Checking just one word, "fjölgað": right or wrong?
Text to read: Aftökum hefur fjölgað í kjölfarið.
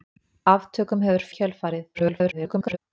wrong